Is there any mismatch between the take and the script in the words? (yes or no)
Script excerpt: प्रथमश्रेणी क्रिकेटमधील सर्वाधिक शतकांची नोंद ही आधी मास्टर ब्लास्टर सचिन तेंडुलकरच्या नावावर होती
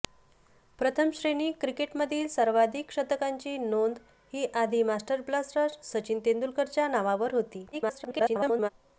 yes